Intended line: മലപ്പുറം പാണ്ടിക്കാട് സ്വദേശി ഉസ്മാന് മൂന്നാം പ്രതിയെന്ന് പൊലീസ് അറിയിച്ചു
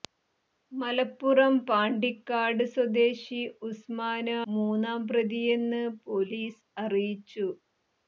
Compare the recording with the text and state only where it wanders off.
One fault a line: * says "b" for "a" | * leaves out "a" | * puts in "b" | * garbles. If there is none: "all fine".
all fine